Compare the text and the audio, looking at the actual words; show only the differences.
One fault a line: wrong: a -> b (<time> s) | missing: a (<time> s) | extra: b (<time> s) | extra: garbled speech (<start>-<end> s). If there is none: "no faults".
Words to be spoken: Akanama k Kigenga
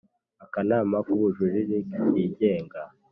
extra: Ubujurire (1.1 s)